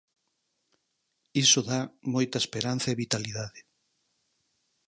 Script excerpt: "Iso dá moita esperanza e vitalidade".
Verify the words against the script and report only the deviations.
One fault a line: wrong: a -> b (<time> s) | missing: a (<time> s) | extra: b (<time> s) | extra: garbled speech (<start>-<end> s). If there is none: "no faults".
no faults